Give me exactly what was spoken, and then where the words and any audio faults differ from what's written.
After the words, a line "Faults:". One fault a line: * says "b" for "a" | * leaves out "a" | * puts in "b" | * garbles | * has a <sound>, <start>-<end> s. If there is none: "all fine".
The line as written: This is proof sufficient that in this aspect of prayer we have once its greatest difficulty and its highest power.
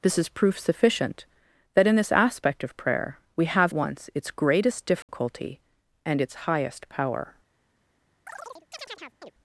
This is proof sufficient that in this aspect of prayer we have once its greatest difficulty and its highest power.
Faults:
* has a dropout, 5.0-5.1 s
* has a chirp, 8.3-9.3 s